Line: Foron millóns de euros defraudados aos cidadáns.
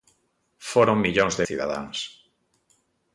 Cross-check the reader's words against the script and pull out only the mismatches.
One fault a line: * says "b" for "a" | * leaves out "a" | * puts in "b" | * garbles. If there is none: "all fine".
* leaves out "euros defraudados aos"